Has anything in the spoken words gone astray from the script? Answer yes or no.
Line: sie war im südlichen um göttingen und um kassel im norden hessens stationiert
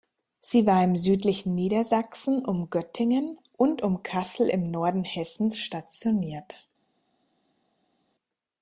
yes